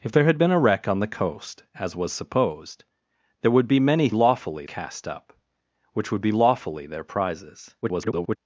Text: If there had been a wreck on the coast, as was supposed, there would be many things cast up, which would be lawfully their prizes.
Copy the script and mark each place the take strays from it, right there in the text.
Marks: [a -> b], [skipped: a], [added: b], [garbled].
If there had been a wreck on the coast, as was supposed, there would be many [things -> lawfully] cast up, which would be lawfully their prizes. [garbled]